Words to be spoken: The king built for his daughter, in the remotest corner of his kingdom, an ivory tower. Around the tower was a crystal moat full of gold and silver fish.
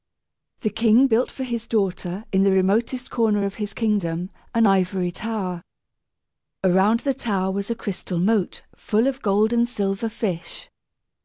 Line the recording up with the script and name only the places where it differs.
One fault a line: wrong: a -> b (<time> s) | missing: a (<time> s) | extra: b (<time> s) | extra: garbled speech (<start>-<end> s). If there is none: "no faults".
no faults